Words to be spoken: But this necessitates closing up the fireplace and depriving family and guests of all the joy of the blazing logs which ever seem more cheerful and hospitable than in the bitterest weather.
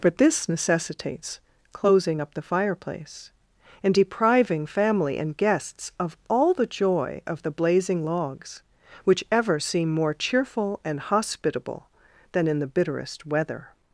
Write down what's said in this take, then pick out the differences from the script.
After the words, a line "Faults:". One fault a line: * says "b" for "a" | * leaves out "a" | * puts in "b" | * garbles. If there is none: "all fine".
But this necessitates closing up the fireplace and depriving family and guests of all the joy of the blazing logs which ever seem more cheerful and hospitable than in the bitterest weather.
Faults:
all fine